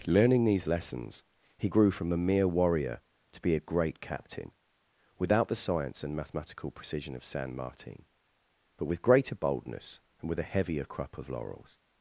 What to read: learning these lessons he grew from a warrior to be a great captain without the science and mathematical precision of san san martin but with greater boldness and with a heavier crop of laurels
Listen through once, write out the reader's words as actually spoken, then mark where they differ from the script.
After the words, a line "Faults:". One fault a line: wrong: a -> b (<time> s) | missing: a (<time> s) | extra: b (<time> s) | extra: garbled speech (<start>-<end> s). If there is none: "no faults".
learning these lessons he grew from a mere warrior to be a great captain without the science and mathematical precision of san martin but with greater boldness and with a heavier crop of laurels
Faults:
extra: mere (2.2 s)
missing: san (7.5 s)